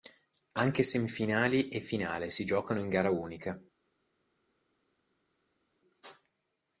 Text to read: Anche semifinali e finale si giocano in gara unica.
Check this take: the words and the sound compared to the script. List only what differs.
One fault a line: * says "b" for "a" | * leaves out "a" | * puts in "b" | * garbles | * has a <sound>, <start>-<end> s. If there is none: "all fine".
all fine